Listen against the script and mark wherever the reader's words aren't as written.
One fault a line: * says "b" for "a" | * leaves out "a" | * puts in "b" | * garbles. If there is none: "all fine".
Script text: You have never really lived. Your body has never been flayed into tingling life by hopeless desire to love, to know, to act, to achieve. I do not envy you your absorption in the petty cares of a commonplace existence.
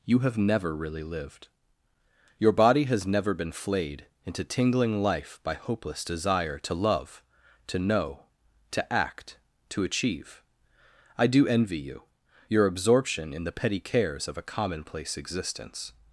* leaves out "not"